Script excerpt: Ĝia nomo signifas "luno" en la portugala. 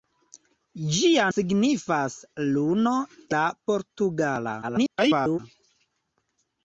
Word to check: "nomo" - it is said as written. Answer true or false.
false